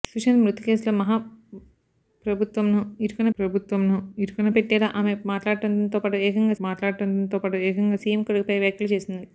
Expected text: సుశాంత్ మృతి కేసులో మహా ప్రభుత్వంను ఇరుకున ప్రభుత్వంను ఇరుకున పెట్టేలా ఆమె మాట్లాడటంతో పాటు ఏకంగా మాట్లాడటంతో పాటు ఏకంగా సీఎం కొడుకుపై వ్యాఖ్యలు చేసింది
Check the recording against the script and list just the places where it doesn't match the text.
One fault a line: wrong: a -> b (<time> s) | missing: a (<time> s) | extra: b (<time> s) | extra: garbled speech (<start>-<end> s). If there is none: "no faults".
no faults